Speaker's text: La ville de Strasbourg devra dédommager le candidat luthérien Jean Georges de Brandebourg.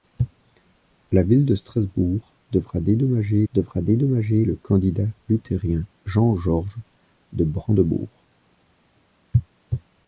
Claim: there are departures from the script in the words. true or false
true